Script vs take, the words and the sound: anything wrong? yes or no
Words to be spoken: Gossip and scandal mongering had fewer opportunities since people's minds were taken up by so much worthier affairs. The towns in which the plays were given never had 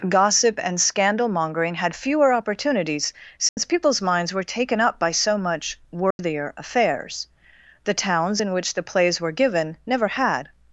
yes